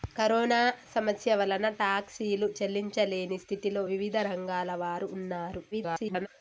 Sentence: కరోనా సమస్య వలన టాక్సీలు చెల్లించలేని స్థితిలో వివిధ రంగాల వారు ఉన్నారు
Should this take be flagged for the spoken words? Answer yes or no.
yes